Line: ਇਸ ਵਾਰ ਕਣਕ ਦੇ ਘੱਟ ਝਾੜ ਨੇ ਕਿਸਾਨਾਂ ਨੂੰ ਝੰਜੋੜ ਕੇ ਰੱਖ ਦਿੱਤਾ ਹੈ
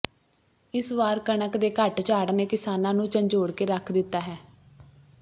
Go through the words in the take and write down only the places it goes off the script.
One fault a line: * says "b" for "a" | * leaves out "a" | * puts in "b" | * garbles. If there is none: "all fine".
all fine